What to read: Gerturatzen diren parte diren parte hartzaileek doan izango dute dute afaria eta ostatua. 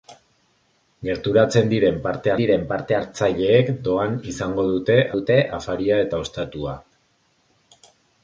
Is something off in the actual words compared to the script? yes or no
no